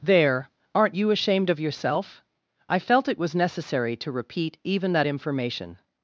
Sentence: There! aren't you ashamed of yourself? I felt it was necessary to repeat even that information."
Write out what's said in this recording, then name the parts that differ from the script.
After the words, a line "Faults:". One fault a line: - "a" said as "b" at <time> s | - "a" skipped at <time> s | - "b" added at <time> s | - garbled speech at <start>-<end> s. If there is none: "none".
There! aren't you ashamed of yourself? I felt it was necessary to repeat even that information."
Faults:
none